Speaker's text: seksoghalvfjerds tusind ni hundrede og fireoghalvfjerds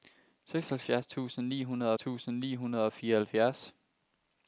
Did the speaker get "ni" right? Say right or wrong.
right